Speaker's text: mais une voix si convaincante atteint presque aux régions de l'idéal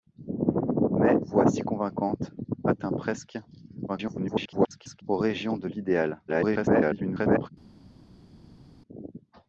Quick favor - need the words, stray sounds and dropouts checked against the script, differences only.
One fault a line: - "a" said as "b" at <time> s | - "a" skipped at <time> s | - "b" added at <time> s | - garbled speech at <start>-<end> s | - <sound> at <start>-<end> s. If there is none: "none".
- "une" skipped at 1.1 s
- garbled speech at 3.9-5.0 s
- garbled speech at 6.3-7.5 s